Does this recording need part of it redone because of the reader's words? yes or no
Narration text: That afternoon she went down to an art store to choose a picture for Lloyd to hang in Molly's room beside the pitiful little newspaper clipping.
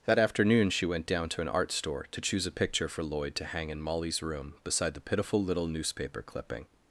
no